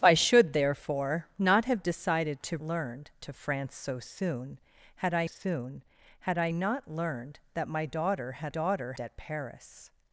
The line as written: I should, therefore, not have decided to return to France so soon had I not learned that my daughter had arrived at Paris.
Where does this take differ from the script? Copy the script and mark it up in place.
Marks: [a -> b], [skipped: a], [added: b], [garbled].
I should, therefore, not have decided to [return -> learned] to France so soon had I [added: soon had I] not learned that my daughter had [arrived -> daughter] at Paris.